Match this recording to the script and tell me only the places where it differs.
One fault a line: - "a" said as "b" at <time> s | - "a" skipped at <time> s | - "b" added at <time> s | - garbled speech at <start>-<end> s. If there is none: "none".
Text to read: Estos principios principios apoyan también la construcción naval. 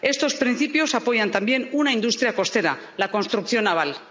- "principios" skipped at 0.9 s
- "una industria costera" added at 1.7 s